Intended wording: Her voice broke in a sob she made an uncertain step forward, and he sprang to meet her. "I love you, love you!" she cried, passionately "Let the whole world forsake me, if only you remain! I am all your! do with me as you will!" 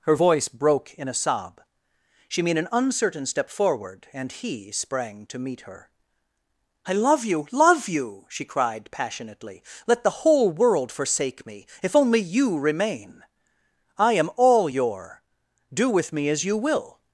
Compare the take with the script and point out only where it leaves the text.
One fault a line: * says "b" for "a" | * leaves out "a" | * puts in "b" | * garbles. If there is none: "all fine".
all fine